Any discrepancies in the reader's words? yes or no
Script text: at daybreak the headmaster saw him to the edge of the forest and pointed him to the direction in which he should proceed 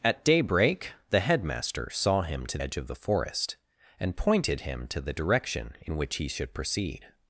yes